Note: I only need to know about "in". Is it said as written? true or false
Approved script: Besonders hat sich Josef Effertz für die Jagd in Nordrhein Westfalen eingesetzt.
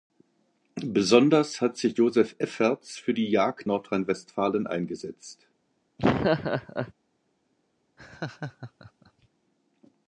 false